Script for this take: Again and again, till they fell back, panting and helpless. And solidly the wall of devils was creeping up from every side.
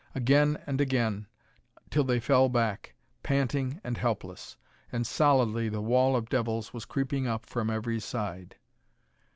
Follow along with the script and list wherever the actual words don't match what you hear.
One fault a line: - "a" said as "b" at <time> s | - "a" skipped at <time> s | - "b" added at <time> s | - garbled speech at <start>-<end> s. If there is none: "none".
none